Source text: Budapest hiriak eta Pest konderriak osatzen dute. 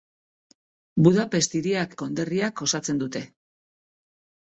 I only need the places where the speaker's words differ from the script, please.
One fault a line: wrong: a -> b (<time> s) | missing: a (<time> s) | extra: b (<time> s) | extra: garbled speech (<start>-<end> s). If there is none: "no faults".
missing: eta Pest (1.9 s)